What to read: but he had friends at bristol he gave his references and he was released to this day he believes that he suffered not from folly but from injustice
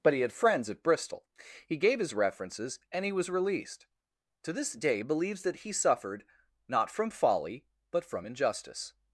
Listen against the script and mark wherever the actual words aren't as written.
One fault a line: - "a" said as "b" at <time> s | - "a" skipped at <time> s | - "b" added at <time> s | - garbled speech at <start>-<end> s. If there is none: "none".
- "he" skipped at 5.0 s